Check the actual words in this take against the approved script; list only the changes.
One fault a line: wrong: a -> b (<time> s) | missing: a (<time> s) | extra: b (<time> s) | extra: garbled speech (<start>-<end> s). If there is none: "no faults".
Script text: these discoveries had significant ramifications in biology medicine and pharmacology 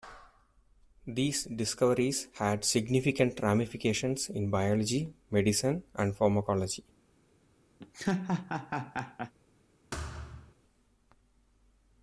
no faults